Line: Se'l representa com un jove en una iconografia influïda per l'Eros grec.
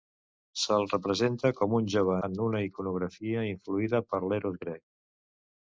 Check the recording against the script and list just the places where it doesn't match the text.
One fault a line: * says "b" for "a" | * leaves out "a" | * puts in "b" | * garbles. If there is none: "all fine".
all fine